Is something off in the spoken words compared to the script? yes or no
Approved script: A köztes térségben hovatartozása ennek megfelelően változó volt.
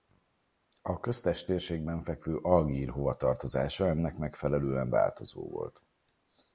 yes